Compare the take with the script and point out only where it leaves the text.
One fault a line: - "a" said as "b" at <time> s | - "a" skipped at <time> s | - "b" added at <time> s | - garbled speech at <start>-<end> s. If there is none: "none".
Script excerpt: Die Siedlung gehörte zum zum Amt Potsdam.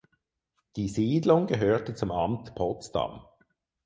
- "zum" skipped at 2.1 s